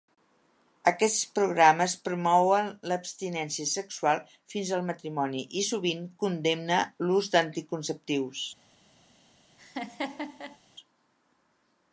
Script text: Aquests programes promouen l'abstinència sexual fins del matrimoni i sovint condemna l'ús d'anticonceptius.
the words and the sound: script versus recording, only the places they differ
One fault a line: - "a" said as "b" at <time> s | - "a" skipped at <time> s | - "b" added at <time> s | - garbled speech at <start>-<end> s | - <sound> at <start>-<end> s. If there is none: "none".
- "del" said as "al" at 4.8 s
- laugh at 9.6-10.6 s